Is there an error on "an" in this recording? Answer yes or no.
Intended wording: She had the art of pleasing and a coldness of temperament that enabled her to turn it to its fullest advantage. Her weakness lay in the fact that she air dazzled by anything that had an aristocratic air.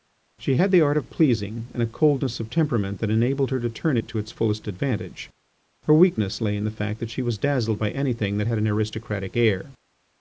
no